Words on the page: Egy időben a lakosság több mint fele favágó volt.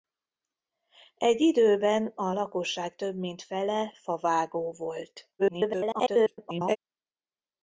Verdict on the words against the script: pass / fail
fail